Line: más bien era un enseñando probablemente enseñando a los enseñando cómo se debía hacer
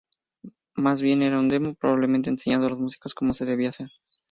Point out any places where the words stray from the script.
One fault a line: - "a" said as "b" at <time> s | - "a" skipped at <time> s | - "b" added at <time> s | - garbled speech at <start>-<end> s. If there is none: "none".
- "enseñando" said as "demo" at 1.5 s
- "enseñando" said as "músicos" at 2.8 s